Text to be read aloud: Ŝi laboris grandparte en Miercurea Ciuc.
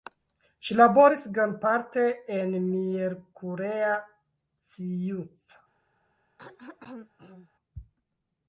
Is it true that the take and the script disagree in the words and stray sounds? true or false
true